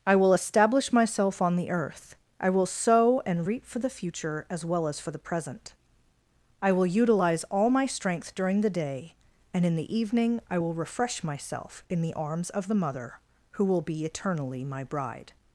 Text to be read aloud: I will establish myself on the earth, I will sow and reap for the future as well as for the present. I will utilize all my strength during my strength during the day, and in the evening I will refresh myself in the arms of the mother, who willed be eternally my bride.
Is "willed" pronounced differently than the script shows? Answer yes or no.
yes